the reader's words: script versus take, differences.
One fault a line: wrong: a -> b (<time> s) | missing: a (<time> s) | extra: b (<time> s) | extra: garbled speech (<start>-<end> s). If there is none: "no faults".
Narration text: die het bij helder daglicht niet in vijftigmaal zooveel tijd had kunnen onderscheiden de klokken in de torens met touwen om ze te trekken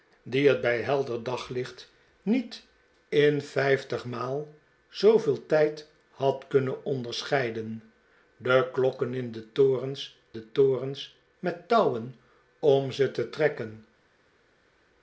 extra: de torens (10.3 s)